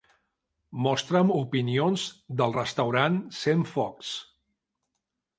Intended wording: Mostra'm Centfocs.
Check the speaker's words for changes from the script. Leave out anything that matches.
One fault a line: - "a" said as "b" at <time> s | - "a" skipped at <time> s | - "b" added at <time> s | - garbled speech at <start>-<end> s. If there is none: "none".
- "opinions del restaurant" added at 1.4 s